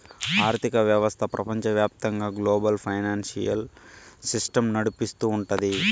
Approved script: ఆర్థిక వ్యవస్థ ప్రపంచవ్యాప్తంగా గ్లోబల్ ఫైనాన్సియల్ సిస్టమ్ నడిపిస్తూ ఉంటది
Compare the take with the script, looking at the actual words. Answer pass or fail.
pass